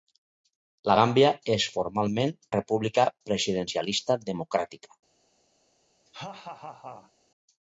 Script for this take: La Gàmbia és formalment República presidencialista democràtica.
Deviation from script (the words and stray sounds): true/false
true